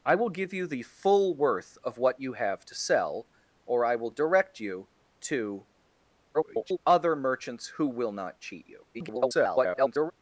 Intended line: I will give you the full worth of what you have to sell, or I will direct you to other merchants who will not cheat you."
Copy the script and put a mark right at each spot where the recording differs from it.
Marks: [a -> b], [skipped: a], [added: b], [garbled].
I will give you the full worth of what you have to sell, or I will direct you to [garbled] other merchants who will not cheat you." [garbled]